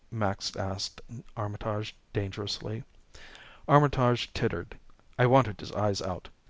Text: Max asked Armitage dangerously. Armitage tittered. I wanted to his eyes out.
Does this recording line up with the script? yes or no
yes